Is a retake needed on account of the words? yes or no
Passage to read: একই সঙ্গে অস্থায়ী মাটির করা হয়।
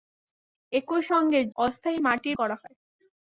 no